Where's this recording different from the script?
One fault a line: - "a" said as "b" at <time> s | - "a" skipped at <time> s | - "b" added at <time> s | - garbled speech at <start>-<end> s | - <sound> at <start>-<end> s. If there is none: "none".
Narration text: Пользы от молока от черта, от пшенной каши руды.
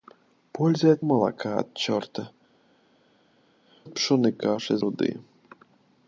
none